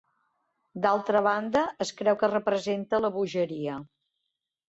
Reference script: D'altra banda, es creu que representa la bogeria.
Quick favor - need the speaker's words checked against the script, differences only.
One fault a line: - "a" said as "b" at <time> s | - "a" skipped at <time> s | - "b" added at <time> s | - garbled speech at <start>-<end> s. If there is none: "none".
none